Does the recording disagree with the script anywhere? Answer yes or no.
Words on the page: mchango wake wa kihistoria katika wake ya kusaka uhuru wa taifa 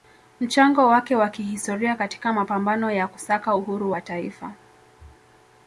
yes